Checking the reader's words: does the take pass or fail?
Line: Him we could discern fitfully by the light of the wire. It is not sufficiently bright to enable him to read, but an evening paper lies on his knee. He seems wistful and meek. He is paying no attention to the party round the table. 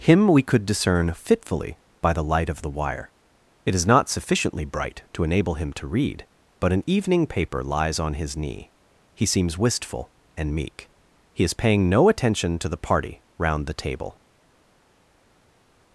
pass